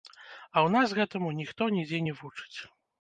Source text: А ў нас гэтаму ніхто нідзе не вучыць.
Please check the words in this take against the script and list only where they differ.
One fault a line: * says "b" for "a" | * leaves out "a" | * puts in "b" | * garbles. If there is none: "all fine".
all fine